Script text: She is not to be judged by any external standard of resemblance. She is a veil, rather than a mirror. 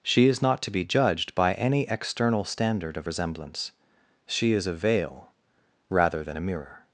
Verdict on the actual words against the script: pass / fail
pass